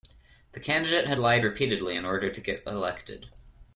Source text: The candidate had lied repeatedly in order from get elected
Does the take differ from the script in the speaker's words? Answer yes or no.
yes